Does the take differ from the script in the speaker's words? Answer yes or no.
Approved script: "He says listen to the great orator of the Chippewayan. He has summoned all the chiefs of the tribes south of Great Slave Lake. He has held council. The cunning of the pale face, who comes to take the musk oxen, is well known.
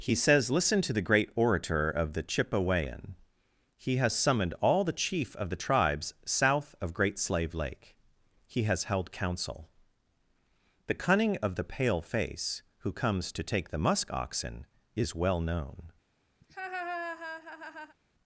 yes